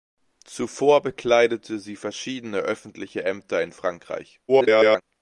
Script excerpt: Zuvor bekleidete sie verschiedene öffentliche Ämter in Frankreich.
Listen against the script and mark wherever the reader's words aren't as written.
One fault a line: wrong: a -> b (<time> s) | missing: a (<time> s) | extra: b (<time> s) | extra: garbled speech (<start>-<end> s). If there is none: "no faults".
extra: garbled speech (4.5-5.0 s)